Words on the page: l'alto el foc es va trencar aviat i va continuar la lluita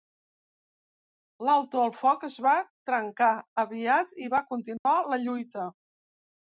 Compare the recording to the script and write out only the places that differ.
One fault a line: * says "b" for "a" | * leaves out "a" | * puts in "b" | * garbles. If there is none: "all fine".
all fine